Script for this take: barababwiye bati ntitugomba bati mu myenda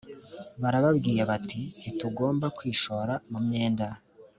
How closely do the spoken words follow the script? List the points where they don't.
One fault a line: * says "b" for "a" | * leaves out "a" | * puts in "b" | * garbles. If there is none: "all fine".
* says "kwishora" for "bati"